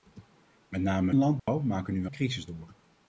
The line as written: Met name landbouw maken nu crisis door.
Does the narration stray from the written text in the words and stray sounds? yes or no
yes